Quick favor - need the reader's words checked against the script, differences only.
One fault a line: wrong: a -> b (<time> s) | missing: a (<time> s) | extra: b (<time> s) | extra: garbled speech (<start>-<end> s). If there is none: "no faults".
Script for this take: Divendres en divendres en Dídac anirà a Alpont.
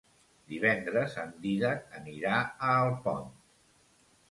missing: divendres en (1.4 s)